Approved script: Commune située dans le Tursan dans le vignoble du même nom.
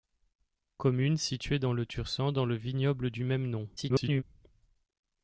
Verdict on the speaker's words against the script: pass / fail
fail